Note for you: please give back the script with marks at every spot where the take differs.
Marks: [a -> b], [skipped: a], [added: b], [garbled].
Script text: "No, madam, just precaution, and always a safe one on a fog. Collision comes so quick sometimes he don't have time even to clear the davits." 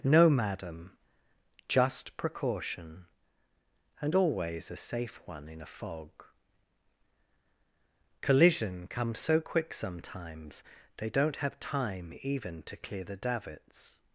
"No, madam, just precaution, and always a safe one [on -> in] a fog. Collision comes so quick sometimes [he -> they] don't have time even to clear the davits."